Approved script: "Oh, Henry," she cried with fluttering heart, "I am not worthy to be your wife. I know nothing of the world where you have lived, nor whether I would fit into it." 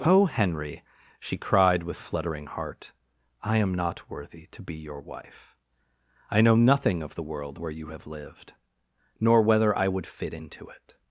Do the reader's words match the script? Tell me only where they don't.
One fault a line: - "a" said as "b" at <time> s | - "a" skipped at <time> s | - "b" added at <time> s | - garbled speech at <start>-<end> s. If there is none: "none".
none